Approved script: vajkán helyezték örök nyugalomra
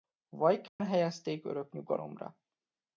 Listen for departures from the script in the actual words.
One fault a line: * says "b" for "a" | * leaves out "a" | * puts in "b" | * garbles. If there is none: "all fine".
all fine